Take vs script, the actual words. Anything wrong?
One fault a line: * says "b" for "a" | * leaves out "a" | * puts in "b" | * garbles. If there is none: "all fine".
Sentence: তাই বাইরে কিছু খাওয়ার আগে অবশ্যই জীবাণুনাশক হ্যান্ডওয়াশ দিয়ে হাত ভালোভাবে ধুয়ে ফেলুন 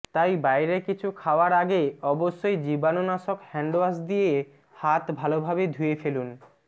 all fine